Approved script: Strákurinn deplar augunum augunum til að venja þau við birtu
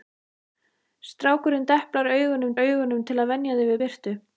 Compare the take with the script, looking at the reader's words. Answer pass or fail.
pass